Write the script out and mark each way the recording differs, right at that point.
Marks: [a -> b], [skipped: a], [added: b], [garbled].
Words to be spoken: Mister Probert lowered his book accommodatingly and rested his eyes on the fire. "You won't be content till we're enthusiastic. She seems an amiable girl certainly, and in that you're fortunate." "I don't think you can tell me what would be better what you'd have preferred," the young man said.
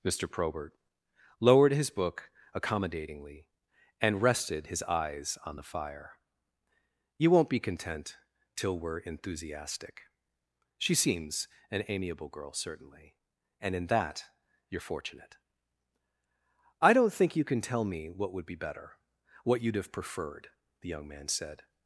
Mister Probert lowered his book accommodatingly and rested his eyes on the fire. "You won't be content till we're enthusiastic. She seems an amiable girl certainly, and in that you're fortunate." "I don't think you can tell me what would be better what you'd have preferred," the young man said.